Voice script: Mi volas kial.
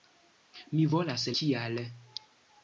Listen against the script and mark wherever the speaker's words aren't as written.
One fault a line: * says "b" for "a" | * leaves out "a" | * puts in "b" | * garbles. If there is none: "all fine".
all fine